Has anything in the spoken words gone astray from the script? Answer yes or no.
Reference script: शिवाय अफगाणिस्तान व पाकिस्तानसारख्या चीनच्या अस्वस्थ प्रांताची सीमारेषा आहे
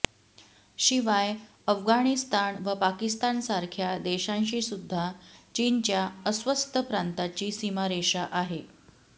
yes